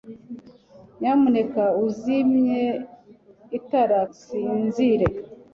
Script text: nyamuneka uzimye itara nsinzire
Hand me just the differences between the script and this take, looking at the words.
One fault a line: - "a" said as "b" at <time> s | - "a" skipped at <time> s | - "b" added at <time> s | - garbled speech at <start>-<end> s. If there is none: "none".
none